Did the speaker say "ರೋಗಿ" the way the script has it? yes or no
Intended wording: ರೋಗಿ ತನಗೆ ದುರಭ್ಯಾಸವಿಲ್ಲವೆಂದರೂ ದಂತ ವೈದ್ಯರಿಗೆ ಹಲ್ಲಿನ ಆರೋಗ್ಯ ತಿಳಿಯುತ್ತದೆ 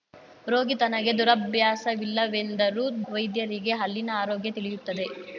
yes